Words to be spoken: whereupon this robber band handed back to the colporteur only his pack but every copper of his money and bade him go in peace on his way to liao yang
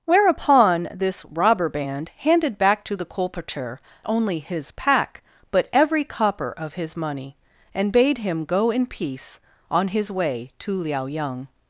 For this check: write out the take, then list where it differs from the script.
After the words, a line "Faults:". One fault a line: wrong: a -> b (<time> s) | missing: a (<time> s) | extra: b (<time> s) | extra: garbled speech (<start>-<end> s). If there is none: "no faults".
whereupon this robber band handed back to the colporteur only his pack but every copper of his money and bade him go in peace on his way to liao yang
Faults:
no faults